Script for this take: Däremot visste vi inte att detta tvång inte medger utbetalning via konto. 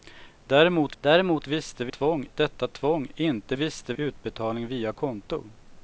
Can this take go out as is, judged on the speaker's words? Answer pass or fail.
fail